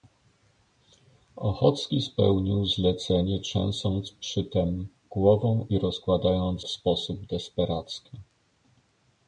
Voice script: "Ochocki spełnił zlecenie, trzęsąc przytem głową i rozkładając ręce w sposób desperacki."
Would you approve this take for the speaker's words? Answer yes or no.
no